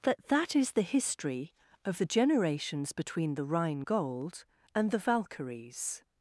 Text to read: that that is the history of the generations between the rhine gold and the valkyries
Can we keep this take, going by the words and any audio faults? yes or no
yes